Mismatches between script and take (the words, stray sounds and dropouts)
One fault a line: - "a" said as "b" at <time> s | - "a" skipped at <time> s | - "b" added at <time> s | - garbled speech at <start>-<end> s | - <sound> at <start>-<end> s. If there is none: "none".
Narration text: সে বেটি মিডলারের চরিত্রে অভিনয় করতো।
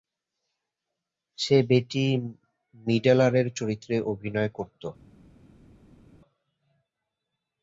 none